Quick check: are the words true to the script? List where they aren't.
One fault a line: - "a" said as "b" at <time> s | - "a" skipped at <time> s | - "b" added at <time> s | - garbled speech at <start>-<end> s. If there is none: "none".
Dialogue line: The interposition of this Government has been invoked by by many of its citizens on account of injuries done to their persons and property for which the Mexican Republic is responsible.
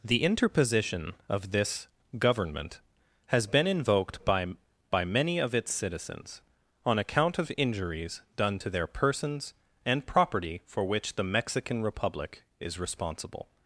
none